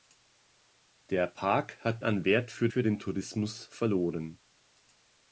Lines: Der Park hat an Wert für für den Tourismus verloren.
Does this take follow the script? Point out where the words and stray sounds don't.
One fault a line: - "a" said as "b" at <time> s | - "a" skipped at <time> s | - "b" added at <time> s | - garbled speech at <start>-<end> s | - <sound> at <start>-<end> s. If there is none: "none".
none